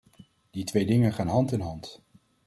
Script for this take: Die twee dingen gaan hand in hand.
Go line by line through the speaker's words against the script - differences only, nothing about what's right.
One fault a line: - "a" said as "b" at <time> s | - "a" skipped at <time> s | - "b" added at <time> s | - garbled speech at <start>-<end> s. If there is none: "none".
none